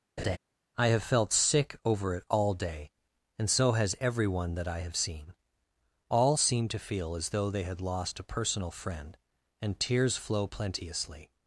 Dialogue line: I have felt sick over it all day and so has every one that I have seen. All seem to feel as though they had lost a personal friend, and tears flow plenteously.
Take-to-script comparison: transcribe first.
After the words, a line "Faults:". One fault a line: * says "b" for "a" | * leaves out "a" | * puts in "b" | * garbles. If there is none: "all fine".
I have felt sick over it all day and so has every one that I have seen. All seem to feel as though they had lost a personal friend, and tears flow plenteously.
Faults:
all fine